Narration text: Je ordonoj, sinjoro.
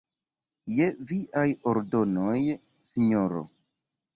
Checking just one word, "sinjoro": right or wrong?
right